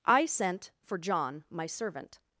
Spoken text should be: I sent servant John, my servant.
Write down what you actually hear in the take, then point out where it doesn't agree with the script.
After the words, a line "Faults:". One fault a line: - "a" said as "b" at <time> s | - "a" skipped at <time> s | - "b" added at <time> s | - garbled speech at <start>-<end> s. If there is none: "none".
I sent for John, my servant.
Faults:
- "servant" said as "for" at 0.8 s